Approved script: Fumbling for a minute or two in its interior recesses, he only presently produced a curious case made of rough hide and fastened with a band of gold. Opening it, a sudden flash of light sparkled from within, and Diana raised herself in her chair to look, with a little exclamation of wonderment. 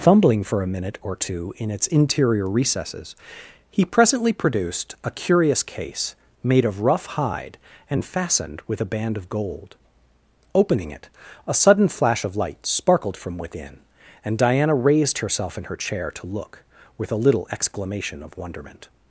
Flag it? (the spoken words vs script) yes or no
yes